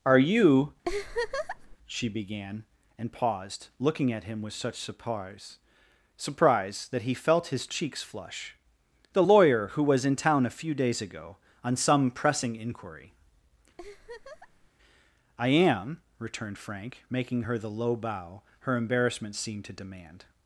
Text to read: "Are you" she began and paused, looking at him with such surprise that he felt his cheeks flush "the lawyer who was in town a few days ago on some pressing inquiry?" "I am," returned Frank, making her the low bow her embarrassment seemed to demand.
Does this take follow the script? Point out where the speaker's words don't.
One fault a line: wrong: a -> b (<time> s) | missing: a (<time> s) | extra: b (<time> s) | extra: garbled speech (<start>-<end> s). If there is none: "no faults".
extra: surprise (6.1 s)